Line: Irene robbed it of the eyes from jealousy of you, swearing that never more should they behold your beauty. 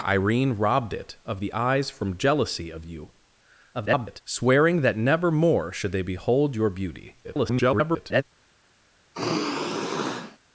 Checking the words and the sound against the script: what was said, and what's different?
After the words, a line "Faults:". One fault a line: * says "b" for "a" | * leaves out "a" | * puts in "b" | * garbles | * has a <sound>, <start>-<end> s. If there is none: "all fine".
Irene robbed it of the eyes from jealousy of you, [garbled] swearing that never more should they behold your beauty. [garbled]
Faults:
* garbles
* garbles
* has a sigh, 9.1-10.4 s